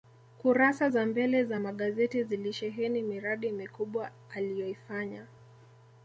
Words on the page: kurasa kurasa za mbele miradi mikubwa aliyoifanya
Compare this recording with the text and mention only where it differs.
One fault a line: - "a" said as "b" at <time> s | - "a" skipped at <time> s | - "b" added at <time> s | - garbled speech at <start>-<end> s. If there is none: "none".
- "kurasa" said as "za mbele" at 0.9 s
- "mbele" said as "magazeti zilisheheni" at 1.6 s